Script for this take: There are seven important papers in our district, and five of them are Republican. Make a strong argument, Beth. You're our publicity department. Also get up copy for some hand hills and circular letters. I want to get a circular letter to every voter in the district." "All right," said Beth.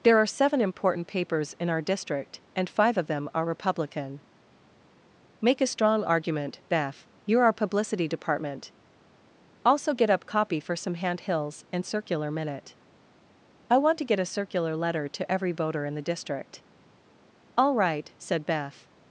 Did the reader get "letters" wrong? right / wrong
wrong